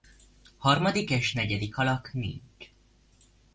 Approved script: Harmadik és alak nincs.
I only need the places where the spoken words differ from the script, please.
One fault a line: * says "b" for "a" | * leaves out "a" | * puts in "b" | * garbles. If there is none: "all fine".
* puts in "negyedik"